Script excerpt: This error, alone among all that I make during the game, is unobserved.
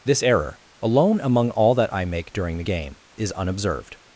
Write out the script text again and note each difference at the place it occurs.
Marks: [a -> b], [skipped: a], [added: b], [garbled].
This error, alone among all that I make during the game, is unobserved.